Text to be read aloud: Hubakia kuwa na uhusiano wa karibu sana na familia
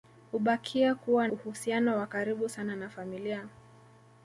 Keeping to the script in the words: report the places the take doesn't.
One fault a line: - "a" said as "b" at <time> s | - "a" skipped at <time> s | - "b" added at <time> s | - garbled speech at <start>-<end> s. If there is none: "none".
- "na" skipped at 1.3 s